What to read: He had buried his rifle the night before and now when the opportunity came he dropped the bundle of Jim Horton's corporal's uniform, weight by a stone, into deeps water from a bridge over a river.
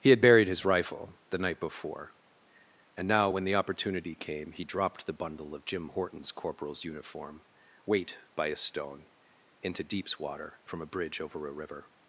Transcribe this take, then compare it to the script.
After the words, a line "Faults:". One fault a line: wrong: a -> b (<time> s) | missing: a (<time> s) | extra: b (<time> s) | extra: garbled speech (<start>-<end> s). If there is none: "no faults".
He had buried his rifle the night before and now when the opportunity came he dropped the bundle of Jim Horton's corporal's uniform, weight by a stone, into deeps water from a bridge over a river.
Faults:
no faults